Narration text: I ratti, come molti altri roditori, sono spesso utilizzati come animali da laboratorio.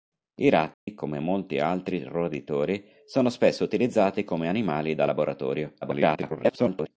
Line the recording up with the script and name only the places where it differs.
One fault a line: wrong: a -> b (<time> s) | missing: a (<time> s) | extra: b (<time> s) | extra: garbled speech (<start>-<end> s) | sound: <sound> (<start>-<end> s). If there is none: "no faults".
sound: dropout (0.7-0.9 s)
extra: garbled speech (5.8-6.9 s)